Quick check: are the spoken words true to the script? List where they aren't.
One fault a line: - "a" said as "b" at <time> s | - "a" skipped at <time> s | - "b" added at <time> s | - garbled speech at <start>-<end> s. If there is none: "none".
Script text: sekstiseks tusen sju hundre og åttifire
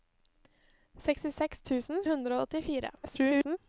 - "sju" skipped at 2.0 s
- garbled speech at 3.0-3.6 s